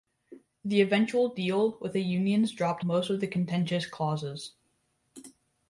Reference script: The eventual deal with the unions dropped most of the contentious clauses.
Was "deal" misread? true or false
false